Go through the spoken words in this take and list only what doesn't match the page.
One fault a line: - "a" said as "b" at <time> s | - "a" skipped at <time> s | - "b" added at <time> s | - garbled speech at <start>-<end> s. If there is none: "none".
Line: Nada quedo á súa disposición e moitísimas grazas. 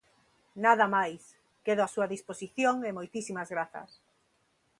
- "máis" added at 0.9 s